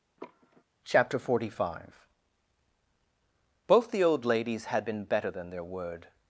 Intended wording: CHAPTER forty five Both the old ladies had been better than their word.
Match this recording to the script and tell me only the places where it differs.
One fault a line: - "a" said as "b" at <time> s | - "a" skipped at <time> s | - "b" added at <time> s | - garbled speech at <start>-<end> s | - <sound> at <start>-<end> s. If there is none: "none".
- sigh at 0.2-0.6 s